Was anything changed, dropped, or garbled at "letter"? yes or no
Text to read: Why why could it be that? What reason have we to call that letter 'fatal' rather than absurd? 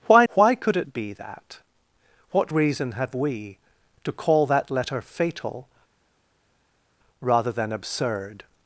no